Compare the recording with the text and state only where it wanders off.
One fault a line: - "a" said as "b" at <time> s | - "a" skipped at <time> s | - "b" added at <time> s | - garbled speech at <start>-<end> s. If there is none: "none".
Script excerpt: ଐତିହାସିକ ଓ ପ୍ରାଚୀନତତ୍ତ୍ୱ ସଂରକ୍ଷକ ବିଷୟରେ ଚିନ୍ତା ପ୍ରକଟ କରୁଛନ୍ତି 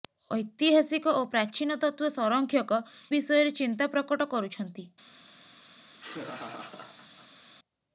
none